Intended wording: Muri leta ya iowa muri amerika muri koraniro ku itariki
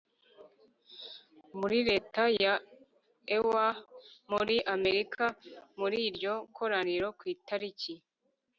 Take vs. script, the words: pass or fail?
fail